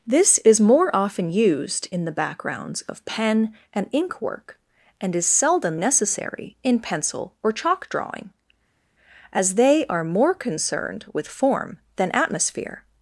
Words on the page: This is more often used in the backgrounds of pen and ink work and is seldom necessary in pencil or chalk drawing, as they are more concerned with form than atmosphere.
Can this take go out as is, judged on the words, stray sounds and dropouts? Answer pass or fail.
pass